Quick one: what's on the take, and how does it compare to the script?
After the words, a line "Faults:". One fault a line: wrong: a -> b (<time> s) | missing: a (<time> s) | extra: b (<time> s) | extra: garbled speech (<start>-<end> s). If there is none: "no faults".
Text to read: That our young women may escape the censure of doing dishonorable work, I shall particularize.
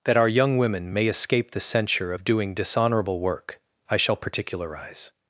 That our young women may escape the censure of doing dishonorable work, I shall particularize.
Faults:
no faults